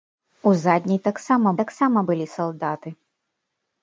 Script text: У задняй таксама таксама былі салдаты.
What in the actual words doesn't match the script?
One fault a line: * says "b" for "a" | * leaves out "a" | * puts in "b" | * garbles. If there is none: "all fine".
all fine